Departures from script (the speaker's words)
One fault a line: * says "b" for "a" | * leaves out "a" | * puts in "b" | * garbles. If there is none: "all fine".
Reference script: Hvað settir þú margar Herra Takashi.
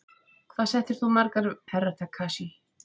all fine